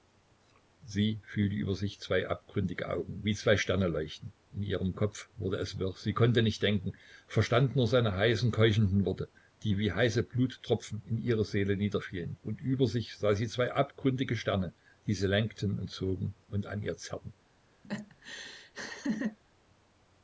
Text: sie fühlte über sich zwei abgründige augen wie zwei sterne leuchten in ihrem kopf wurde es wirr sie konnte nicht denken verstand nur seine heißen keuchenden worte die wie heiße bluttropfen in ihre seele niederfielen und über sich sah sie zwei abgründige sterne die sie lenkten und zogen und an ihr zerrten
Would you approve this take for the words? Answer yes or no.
yes